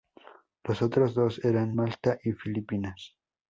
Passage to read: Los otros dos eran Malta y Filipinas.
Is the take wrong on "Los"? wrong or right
right